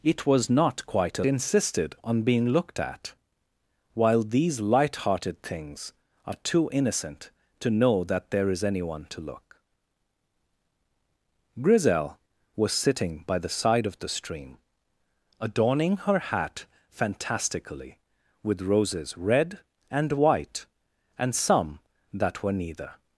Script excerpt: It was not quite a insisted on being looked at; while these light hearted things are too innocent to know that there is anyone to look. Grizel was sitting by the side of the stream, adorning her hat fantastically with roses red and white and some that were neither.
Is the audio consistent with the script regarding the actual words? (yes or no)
yes